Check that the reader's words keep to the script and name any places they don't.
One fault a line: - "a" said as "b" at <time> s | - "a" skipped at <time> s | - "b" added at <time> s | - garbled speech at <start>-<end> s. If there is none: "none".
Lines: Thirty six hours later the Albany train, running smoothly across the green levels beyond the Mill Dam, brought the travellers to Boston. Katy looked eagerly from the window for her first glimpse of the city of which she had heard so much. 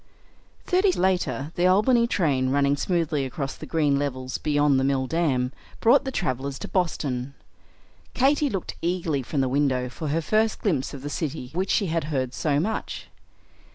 - "six hours" skipped at 0.9 s
- "of" skipped at 11.5 s